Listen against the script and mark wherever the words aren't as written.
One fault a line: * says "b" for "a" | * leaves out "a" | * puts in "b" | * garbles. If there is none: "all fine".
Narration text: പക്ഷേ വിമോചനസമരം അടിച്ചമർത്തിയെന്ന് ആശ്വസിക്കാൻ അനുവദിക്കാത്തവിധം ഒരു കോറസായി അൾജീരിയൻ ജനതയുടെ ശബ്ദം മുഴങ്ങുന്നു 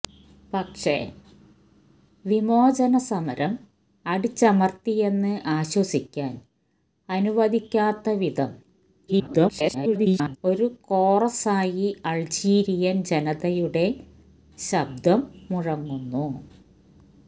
* garbles